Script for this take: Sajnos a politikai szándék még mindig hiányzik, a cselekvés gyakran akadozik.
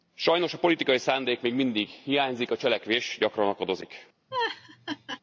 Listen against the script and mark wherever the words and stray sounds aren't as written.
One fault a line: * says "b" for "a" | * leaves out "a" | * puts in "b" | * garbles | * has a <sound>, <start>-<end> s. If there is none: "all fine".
* has a laugh, 4.3-5.2 s